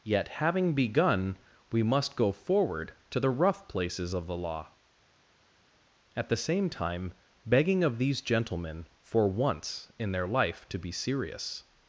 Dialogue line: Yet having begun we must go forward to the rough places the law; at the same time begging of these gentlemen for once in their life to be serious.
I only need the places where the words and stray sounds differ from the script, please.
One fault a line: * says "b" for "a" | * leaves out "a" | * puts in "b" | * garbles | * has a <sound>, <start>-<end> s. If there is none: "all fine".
* puts in "of"